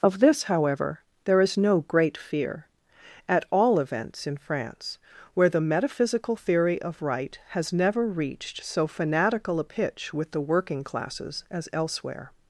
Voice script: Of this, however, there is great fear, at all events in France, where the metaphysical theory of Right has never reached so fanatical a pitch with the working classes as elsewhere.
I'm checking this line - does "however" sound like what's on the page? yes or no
yes